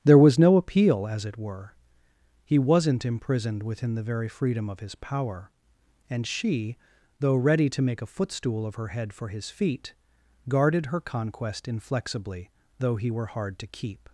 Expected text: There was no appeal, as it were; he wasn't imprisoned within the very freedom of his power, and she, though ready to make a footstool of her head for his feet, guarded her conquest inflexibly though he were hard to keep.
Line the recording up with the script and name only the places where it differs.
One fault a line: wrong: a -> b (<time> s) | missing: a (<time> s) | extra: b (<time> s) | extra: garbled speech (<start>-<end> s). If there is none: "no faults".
no faults